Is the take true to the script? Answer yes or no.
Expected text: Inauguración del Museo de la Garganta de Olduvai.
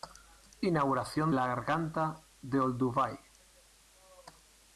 no